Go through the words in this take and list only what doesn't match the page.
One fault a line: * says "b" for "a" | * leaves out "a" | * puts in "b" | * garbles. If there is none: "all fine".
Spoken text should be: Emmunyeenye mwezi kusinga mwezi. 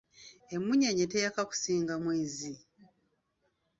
* says "teyaka" for "mwezi"